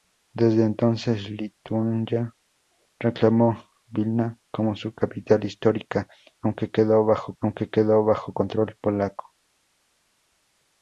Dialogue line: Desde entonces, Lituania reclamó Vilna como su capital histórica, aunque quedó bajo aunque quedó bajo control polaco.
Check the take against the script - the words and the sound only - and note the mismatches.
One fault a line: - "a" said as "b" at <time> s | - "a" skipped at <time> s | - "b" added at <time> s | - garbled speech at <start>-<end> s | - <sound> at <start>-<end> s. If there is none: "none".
none